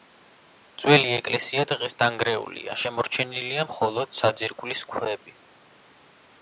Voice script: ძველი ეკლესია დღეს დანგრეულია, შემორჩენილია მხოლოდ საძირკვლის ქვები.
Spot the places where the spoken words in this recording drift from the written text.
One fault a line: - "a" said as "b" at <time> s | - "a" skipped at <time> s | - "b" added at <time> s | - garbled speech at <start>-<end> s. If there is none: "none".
none